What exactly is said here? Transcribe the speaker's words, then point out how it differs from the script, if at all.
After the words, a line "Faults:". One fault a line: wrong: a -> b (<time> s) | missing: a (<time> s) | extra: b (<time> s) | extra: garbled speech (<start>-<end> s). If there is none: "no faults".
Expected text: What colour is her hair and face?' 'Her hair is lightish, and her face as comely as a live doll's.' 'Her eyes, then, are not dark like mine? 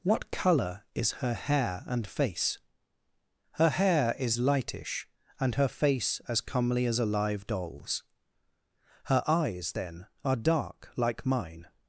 What colour is her hair and face?' 'Her hair is lightish, and her face as comely as a live doll's.' 'Her eyes, then, are dark like mine?
Faults:
missing: not (10.4 s)